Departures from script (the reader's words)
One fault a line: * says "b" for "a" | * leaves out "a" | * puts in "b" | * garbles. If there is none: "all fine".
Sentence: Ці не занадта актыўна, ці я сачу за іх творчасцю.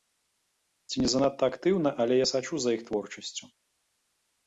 * says "але" for "ці"